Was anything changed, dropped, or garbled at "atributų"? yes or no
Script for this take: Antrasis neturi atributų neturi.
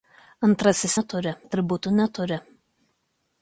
no